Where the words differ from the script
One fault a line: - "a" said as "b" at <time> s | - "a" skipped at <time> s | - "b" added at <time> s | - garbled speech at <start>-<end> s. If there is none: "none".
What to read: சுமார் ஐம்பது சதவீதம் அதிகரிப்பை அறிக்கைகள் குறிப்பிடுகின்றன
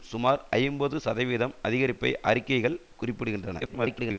- garbled speech at 3.6-4.2 s